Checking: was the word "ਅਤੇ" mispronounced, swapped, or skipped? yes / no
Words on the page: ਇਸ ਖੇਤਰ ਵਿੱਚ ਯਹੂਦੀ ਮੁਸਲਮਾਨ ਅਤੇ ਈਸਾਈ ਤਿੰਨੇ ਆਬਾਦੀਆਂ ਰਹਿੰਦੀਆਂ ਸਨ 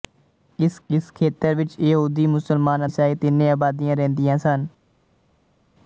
yes